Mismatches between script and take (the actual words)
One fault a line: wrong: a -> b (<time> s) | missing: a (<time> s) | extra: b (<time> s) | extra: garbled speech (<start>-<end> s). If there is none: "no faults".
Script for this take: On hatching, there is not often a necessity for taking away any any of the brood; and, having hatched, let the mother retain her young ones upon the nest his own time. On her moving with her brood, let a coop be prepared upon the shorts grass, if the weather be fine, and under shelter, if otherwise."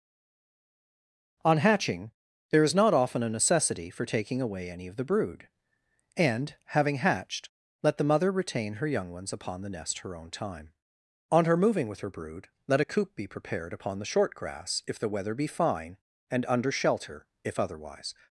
missing: any (4.9 s)
wrong: his -> her (10.0 s)
wrong: shorts -> short (14.1 s)